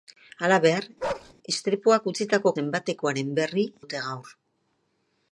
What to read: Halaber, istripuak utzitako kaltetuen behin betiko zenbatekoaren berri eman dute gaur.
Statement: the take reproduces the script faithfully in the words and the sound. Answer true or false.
false